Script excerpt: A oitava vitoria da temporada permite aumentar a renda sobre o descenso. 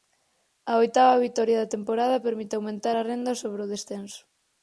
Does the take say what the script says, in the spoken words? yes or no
yes